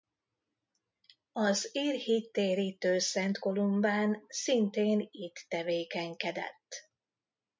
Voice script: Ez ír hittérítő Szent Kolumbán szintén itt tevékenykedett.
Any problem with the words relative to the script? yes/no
yes